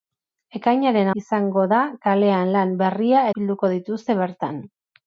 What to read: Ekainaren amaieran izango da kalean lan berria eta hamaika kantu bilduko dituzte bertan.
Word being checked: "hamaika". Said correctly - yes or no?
no